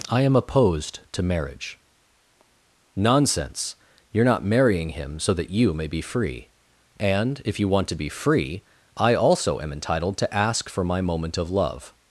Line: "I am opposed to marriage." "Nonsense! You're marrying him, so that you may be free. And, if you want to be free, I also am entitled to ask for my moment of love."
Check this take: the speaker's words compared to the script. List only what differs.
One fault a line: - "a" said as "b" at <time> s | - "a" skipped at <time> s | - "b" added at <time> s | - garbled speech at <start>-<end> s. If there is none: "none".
- "not" added at 4.2 s